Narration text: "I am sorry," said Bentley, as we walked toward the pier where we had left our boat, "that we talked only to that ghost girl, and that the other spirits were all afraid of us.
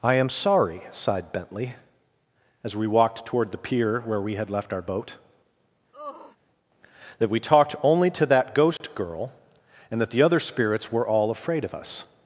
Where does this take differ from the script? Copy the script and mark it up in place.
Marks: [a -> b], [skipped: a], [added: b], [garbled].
"I am sorry," [said -> sighed] Bentley, as we walked toward the pier where we had left our boat, "that we talked only to that ghost girl, and that the other spirits were all afraid of us.